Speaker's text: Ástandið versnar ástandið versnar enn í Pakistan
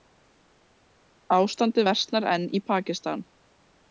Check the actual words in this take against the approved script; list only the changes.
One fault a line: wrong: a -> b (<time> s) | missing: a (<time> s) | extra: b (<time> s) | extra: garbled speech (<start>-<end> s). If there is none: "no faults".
missing: ástandið versnar (2.3 s)